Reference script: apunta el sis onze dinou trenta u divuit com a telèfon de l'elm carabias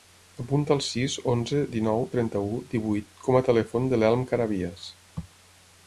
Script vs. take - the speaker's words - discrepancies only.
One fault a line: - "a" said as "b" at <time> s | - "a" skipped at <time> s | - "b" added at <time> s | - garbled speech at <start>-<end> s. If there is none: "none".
none